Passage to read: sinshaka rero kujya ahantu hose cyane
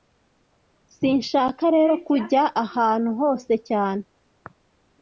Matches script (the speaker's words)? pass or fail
pass